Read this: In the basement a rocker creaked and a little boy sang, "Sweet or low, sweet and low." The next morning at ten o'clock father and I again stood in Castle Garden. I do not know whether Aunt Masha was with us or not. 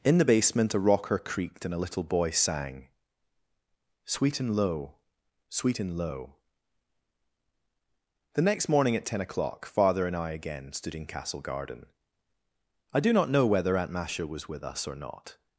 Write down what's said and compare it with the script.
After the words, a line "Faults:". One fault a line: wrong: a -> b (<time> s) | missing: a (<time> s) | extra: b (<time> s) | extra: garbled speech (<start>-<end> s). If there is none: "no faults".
In the basement a rocker creaked and a little boy sang, "Sweet and low, sweet and low." The next morning at ten o'clock father and I again stood in Castle Garden. I do not know whether Aunt Masha was with us or not.
Faults:
wrong: or -> and (4.4 s)